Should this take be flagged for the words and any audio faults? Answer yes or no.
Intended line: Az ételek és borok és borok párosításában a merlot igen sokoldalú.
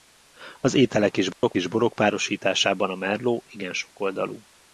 yes